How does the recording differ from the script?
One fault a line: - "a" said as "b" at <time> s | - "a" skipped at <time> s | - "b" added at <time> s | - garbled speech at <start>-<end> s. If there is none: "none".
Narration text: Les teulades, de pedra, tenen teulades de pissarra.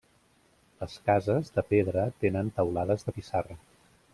- "teulades" said as "cases" at 1.1 s